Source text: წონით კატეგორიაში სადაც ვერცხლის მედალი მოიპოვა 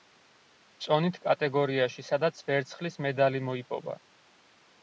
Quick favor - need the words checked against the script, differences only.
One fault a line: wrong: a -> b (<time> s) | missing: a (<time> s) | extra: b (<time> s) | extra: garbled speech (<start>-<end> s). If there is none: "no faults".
no faults